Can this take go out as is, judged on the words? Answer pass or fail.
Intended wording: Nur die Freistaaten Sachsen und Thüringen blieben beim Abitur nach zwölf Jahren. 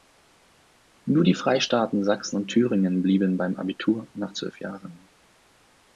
pass